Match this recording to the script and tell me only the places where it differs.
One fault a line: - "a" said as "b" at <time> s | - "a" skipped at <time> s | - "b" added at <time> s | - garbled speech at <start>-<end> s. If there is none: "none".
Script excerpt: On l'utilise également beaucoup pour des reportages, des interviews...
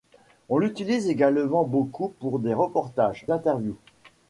- "des" skipped at 3.3 s